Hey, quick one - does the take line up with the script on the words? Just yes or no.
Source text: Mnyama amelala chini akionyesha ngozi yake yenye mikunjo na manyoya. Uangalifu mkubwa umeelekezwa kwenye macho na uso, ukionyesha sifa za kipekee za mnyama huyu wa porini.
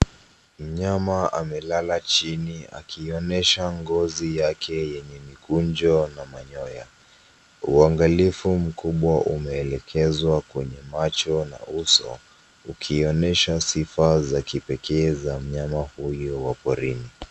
yes